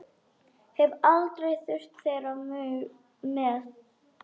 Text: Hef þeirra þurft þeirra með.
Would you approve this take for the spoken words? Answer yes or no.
no